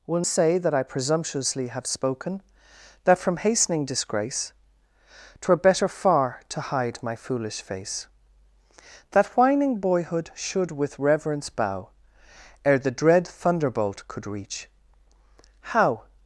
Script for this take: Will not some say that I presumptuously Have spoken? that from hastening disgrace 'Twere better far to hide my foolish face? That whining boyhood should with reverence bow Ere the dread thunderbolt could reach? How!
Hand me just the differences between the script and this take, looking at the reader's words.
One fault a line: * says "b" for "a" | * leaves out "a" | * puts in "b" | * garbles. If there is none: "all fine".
* leaves out "not some"